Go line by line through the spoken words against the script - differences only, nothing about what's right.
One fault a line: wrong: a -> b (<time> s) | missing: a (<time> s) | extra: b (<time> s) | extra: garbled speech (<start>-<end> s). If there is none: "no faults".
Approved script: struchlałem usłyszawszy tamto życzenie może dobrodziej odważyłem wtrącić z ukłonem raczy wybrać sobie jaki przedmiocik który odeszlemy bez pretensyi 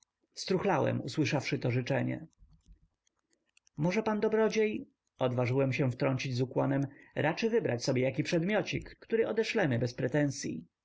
wrong: tamto -> to (1.6 s)
extra: pan (4.0 s)
extra: się (5.7 s)